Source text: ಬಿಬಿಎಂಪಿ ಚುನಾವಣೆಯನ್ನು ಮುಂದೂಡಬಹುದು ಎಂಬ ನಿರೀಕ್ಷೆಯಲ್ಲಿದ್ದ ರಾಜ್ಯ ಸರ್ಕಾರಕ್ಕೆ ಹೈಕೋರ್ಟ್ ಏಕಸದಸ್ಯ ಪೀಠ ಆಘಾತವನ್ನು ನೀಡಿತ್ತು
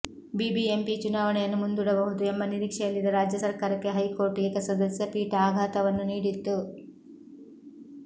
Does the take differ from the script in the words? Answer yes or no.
no